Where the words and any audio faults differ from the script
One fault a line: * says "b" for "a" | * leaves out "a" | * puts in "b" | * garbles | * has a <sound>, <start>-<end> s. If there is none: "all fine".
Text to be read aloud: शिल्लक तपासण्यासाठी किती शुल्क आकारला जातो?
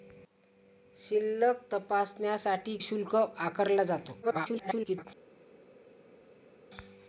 * leaves out "किती"
* garbles